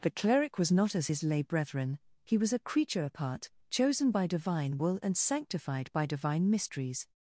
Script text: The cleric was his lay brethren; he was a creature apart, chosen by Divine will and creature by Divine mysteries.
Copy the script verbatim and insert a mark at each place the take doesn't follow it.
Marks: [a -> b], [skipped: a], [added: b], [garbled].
The cleric was [added: not as] his lay brethren; he was a creature apart, chosen by Divine will and [creature -> sanctified] by Divine mysteries.